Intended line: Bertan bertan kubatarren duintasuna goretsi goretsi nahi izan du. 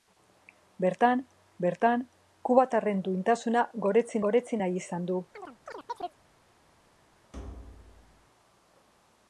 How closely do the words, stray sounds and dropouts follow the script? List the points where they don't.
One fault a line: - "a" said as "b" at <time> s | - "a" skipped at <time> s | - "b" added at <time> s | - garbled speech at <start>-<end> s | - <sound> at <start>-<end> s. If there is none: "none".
- chirp at 5.3-6.2 s
- thud at 7.3-8.3 s